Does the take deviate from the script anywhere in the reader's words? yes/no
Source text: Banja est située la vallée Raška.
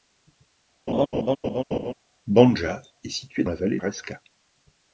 no